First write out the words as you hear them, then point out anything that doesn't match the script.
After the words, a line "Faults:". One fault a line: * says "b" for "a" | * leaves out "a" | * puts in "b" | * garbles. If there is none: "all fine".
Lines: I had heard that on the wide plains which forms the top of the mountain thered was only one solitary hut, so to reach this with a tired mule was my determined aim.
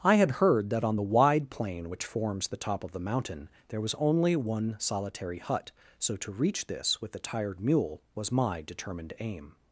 I had heard that on the wide plain which forms the top of the mountain there was only one solitary hut, so to reach this with a tired mule was my determined aim.
Faults:
* says "plain" for "plains"
* says "there" for "thered"